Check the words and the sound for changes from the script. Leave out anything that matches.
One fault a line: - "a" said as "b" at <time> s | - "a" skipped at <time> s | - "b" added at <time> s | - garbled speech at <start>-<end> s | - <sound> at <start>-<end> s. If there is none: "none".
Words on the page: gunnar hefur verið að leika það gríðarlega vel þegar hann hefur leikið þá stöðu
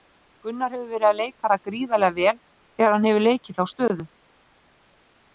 none